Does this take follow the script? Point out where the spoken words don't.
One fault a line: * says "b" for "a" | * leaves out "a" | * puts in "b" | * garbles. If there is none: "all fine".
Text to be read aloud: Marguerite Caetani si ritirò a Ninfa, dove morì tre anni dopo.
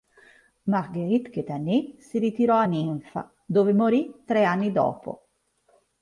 all fine